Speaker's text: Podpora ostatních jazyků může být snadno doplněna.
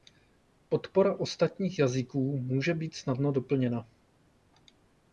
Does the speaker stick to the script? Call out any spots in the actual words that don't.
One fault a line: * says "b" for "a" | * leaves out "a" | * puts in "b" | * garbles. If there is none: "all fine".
all fine